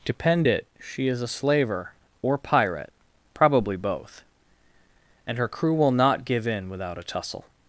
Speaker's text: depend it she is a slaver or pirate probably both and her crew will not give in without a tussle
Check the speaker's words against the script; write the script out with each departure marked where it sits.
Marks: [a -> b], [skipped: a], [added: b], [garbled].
depend it she is a slaver or pirate probably both and her crew will not give in without a tussle